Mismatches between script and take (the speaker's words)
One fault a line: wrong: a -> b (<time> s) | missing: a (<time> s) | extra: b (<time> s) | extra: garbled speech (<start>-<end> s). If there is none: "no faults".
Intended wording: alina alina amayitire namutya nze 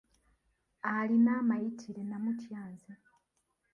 missing: alina (1.3 s)